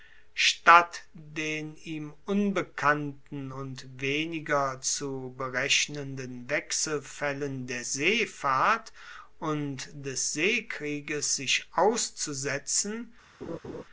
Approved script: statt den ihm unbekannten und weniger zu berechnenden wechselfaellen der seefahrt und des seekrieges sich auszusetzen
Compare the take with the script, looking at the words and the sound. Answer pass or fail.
fail